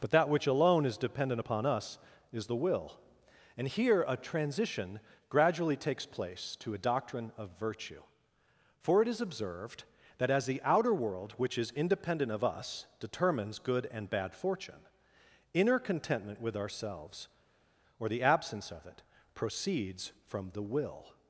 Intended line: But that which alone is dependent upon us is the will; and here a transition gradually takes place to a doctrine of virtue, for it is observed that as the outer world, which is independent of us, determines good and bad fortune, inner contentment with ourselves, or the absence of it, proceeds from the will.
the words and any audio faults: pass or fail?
pass